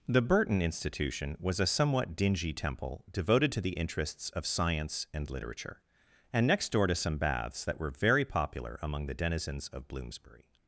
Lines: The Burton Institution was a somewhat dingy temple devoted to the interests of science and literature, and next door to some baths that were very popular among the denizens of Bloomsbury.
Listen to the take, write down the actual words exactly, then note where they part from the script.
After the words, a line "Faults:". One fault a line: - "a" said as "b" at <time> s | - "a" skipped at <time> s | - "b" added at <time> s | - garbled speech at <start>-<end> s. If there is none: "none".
The Burton Institution was a somewhat dingy temple devoted to the interests of science and literature, and next door to some baths that were very popular among the denizens of Bloomsbury.
Faults:
none